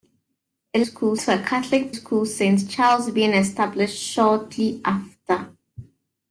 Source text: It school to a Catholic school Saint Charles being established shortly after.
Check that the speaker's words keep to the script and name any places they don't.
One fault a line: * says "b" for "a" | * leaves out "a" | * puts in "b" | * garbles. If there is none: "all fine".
all fine